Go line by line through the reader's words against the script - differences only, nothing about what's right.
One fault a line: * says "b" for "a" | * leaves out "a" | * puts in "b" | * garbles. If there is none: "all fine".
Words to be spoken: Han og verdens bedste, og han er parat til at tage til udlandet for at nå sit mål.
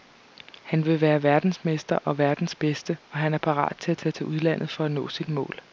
* puts in "vil være verdensmester"